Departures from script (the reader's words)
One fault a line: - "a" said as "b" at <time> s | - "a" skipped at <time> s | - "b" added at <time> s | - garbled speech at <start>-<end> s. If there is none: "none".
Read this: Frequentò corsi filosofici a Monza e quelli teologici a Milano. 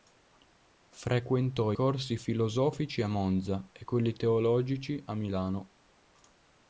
none